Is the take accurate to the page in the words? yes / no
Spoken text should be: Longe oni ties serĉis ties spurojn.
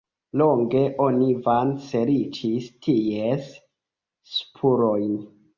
no